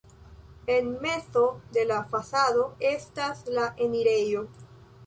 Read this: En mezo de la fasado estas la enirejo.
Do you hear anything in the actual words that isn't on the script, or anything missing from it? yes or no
no